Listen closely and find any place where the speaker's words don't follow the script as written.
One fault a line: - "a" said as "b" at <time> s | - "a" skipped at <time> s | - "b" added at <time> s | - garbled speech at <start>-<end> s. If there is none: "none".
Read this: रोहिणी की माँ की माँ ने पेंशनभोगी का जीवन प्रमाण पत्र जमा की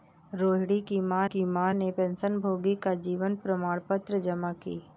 none